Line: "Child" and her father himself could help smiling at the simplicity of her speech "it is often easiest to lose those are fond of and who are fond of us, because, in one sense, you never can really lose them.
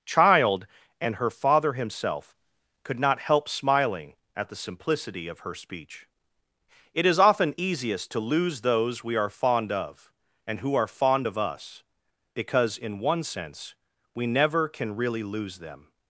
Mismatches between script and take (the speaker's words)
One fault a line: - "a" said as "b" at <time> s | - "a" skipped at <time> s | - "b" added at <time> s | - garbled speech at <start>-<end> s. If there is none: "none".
- "not" added at 3.0 s
- "we" added at 9.0 s
- "you" said as "we" at 14.1 s